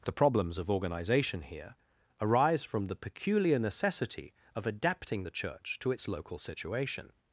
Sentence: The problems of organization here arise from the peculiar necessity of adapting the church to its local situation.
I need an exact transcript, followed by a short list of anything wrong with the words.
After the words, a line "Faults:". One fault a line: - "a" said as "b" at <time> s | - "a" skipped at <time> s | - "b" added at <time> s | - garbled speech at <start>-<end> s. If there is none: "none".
The problems of organization here arise from the peculiar necessity of adapting the church to its local situation.
Faults:
none